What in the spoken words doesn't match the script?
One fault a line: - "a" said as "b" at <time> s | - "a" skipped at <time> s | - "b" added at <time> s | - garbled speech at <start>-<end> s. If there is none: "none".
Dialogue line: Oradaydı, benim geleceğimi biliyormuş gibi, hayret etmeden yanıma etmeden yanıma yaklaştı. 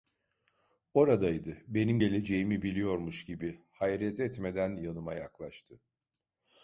- "etmeden yanıma" skipped at 5.1 s